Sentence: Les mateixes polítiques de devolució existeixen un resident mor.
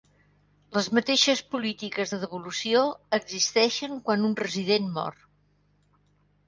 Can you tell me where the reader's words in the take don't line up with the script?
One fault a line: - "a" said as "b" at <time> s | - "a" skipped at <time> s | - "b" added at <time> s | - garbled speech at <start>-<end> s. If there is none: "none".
- "quan" added at 4.1 s